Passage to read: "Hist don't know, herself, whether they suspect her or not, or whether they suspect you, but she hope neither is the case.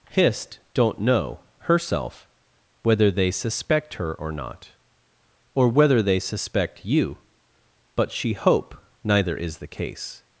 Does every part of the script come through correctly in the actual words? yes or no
yes